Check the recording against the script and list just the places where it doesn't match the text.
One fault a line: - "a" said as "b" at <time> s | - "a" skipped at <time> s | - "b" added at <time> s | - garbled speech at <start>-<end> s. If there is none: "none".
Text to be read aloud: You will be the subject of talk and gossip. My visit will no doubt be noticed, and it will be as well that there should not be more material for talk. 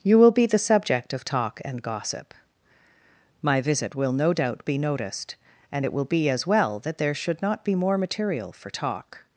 none